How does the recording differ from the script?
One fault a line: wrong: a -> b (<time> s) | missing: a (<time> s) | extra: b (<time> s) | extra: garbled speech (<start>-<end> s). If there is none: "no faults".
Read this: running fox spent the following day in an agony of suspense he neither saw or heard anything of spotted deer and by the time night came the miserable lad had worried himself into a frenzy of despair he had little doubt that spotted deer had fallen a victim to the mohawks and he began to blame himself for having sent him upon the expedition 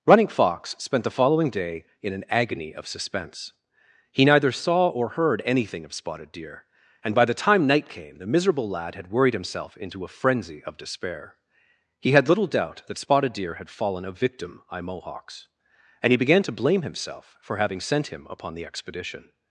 wrong: to the -> by (14.7 s)